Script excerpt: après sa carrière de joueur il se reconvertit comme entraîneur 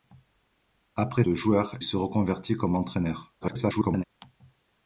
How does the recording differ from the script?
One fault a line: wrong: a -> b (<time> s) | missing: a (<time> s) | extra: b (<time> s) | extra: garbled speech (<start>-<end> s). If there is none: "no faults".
missing: sa carrière (1.2 s)
missing: il (1.8 s)
extra: garbled speech (3.4-4.0 s)